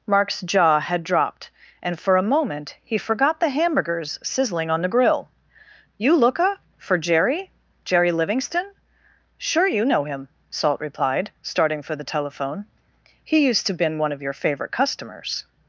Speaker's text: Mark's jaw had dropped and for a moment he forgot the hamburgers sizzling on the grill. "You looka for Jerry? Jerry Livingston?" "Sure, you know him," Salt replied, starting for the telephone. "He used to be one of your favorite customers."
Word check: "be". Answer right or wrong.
wrong